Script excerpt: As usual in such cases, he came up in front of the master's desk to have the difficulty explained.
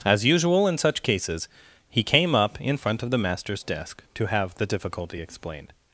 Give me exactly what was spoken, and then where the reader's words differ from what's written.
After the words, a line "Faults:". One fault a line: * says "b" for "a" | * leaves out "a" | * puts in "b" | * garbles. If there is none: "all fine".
As usual in such cases, he came up in front of the master's desk to have the difficulty explained.
Faults:
all fine